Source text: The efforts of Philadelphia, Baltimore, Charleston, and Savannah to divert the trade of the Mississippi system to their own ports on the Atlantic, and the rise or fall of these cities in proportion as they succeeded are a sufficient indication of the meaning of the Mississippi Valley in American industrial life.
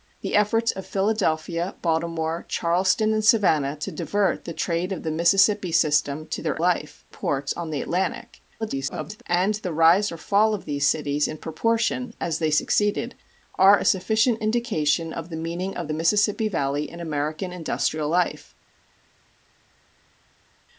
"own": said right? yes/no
no